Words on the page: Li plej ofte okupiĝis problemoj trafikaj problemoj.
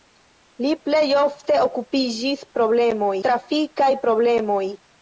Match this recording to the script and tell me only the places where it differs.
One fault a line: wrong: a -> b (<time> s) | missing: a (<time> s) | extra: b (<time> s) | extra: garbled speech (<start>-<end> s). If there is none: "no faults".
no faults